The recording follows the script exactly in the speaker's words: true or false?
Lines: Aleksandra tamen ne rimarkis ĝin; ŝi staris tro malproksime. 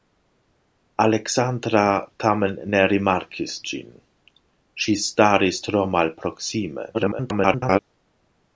false